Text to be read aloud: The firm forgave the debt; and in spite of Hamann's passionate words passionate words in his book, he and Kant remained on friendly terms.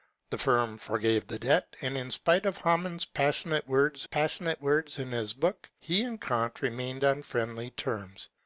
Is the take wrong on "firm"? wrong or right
right